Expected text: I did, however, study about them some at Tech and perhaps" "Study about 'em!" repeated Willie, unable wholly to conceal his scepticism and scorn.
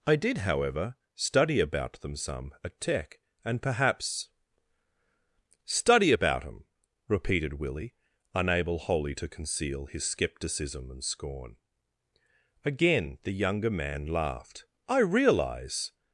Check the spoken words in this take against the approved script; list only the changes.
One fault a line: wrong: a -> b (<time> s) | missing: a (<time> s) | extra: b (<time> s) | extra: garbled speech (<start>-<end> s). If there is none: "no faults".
extra: Again the younger man laughed I realize (12.6 s)